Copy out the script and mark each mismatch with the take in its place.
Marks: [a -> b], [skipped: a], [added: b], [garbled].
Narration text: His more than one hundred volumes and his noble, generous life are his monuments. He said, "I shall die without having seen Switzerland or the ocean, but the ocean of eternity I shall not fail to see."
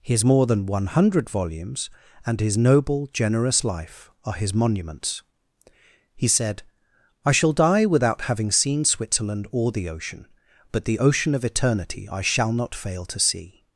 His more than one hundred volumes and his noble, generous life are his monuments. He said, "I shall die without having seen Switzerland or the ocean, but the ocean of eternity I shall not fail to see."